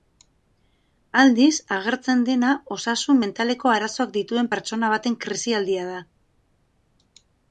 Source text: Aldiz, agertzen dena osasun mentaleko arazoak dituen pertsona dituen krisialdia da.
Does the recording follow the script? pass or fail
fail